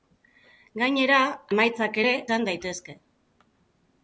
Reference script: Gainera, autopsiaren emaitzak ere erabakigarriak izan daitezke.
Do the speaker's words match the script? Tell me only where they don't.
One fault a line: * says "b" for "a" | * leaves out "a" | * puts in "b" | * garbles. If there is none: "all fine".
* leaves out "autopsiaren"
* leaves out "erabakigarriak"